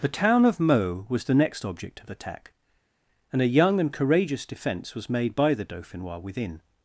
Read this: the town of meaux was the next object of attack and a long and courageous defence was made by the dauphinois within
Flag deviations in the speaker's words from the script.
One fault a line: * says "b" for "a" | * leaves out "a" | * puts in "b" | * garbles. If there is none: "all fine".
* says "young" for "long"